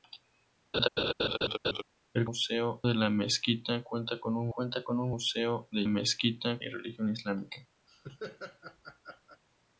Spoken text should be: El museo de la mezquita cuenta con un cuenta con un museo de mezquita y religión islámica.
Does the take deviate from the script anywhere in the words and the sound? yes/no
yes